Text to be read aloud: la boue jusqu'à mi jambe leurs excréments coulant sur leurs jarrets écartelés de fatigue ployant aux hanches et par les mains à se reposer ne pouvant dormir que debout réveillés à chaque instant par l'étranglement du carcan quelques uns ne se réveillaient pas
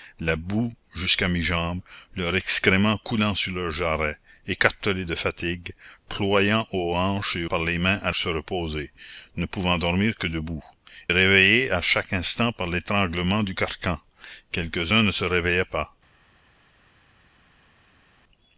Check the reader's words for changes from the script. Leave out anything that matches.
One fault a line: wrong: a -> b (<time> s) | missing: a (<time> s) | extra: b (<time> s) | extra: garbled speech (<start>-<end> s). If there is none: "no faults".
no faults